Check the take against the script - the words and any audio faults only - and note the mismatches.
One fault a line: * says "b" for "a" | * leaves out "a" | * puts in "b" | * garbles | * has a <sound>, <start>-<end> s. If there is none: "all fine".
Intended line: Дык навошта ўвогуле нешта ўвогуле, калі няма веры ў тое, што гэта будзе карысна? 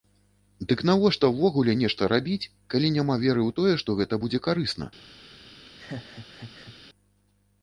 * says "рабіць" for "ўвогуле"
* has a laugh, 5.7-6.8 s